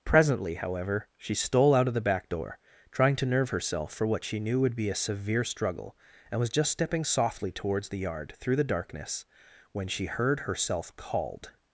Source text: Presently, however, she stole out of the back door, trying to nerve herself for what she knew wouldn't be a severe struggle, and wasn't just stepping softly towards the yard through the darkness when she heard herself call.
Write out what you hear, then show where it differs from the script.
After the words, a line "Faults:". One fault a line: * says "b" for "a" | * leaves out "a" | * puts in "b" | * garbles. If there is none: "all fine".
Presently, however, she stole out of the back door, trying to nerve herself for what she knew would be a severe struggle, and was just stepping softly towards the yard through the darkness when she heard herself called.
Faults:
* says "would" for "wouldn't"
* says "was" for "wasn't"
* says "called" for "call"